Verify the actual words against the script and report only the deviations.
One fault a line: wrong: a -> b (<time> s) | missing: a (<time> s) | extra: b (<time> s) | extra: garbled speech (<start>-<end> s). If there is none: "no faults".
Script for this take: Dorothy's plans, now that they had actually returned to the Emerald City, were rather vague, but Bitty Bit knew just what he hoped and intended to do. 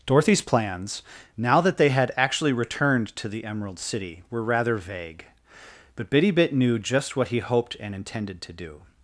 no faults